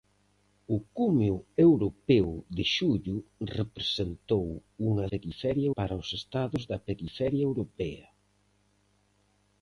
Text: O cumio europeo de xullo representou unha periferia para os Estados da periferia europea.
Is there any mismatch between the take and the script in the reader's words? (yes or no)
no